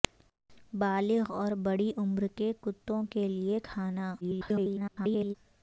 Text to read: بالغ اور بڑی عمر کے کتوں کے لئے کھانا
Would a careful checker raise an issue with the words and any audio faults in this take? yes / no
yes